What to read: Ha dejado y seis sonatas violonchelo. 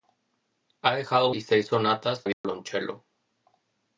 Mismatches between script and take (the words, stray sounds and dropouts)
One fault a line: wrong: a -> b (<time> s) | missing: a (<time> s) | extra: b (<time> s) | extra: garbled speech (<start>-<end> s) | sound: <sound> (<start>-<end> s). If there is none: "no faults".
sound: dropout (2.3-2.4 s)